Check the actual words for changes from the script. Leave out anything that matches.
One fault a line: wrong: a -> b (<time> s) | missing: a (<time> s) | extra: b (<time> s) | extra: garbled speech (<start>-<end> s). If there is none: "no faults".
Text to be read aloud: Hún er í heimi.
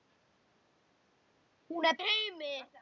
no faults